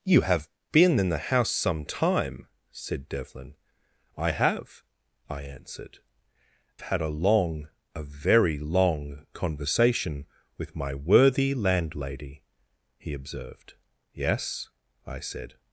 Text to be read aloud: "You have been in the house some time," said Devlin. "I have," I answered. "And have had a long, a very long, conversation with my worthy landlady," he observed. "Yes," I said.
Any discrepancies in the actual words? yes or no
yes